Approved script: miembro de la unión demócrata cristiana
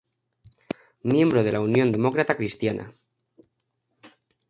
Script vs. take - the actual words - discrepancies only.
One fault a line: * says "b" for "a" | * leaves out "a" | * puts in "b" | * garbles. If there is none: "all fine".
all fine